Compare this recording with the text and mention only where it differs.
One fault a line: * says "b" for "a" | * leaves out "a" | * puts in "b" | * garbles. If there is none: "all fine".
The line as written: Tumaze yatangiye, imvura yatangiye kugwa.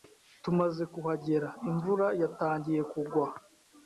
* says "kuhagera" for "yatangiye"